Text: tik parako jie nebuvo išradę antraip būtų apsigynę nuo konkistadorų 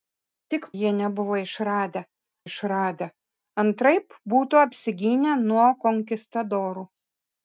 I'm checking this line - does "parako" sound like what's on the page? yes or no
no